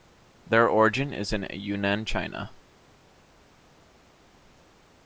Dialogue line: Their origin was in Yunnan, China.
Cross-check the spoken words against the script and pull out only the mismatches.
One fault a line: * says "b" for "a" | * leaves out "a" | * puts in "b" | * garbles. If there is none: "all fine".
* says "is" for "was"